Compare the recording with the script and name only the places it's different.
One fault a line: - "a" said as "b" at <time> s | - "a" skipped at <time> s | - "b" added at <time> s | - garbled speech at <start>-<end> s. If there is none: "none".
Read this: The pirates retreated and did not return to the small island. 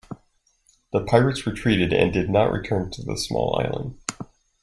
none